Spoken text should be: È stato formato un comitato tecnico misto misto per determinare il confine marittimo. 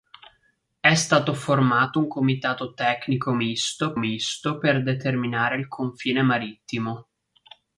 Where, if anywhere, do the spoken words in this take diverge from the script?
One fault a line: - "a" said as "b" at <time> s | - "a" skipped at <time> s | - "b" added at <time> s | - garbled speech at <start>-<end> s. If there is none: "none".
none